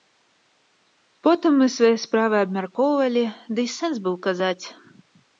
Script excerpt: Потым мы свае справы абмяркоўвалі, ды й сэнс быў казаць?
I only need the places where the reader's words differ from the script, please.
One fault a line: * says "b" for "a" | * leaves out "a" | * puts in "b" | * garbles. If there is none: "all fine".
all fine